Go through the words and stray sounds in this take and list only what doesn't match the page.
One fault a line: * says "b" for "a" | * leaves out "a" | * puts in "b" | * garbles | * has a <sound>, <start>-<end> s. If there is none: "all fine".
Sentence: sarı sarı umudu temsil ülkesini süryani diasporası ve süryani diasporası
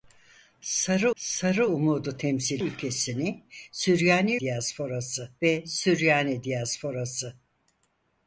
all fine